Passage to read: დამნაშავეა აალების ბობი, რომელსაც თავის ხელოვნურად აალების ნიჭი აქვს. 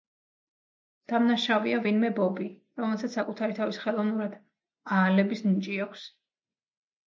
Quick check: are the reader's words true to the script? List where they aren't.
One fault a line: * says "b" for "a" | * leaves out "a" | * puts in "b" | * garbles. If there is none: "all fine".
* says "ვინმე" for "აალების"
* puts in "საკუთარი"